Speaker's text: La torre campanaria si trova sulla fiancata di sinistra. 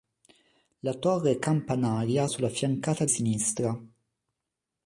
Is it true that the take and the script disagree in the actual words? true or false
true